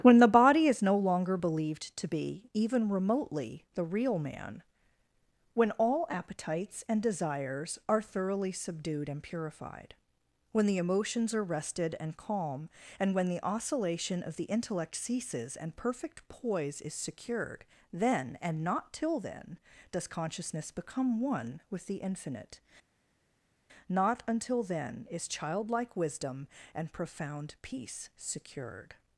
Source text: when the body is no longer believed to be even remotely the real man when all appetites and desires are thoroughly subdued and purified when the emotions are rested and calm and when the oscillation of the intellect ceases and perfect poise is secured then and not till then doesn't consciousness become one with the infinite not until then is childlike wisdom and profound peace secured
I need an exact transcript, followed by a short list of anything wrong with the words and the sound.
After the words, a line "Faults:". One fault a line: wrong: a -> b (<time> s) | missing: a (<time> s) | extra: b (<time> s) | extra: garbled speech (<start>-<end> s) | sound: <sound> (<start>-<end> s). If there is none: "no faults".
when the body is no longer believed to be even remotely the real man when all appetites and desires are thoroughly subdued and purified when the emotions are rested and calm and when the oscillation of the intellect ceases and perfect poise is secured then and not till then does consciousness become one with the infinite not until then is childlike wisdom and profound peace secured
Faults:
wrong: doesn't -> does (19.9 s)